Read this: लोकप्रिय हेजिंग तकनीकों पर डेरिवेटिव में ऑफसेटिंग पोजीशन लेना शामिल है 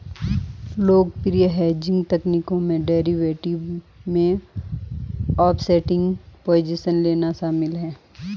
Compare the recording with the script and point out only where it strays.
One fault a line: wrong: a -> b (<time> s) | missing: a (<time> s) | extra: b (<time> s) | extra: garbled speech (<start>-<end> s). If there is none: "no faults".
wrong: पर -> में (2.6 s)